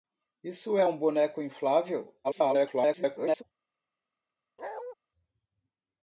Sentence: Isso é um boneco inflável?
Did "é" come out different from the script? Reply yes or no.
no